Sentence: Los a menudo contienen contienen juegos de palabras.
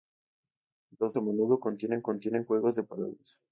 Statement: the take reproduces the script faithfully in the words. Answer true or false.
true